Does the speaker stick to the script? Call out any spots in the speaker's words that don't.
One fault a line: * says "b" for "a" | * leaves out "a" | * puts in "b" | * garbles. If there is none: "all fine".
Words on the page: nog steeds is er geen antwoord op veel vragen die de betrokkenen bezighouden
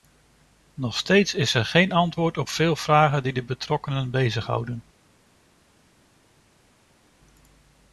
all fine